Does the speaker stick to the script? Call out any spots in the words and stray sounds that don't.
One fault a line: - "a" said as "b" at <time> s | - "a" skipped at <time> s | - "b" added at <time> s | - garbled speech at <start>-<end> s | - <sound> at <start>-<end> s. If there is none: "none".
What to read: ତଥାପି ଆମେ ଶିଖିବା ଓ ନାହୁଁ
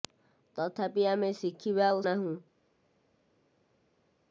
none